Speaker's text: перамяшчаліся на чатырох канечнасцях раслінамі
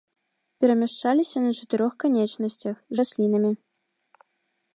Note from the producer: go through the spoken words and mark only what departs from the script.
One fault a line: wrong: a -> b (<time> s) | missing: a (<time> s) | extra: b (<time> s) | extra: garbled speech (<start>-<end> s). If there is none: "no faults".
no faults